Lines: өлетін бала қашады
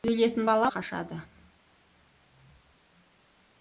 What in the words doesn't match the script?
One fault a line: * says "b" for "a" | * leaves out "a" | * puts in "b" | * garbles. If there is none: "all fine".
all fine